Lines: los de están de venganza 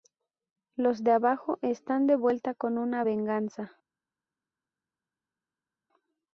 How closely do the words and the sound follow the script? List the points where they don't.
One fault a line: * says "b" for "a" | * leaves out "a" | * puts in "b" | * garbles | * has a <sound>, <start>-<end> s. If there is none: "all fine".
* puts in "abajo"
* puts in "vuelta con una"